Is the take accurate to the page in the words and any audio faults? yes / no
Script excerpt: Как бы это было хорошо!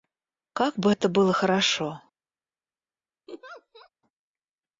no